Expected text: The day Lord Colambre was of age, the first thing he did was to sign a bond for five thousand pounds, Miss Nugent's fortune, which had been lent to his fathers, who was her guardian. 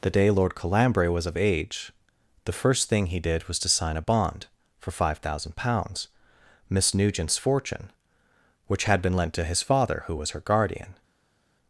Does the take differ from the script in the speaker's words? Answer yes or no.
yes